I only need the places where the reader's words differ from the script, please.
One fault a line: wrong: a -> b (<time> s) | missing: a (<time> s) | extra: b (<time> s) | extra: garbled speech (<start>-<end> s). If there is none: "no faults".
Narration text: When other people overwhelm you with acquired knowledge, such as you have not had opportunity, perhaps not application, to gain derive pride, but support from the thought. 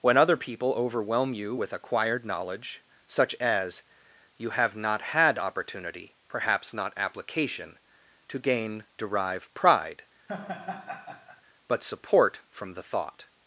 no faults